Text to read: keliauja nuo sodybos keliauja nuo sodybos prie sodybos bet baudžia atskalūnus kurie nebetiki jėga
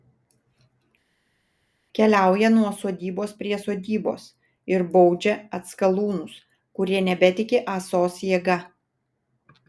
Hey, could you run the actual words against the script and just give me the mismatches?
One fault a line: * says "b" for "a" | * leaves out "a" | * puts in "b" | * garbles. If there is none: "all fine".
* leaves out "keliauja nuo sodybos"
* says "ir" for "bet"
* puts in "ąsos"